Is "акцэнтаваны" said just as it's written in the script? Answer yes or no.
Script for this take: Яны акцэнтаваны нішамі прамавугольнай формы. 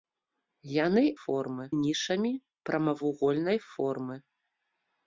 no